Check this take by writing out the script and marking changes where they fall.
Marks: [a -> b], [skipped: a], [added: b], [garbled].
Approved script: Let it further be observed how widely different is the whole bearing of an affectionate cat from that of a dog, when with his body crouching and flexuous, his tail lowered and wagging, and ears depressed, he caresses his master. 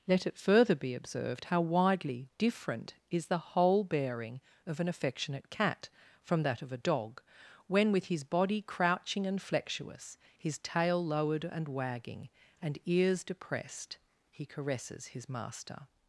Let it further be observed how widely different is the whole bearing of an affectionate cat from that of a dog, when with his body crouching and flexuous, his tail lowered and wagging, and ears depressed, he caresses his master.